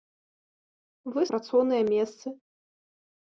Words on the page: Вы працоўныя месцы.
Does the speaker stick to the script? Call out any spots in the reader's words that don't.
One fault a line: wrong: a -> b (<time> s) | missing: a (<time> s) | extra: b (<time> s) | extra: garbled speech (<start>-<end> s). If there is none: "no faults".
no faults